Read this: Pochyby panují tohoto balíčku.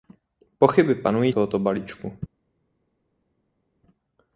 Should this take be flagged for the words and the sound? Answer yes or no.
no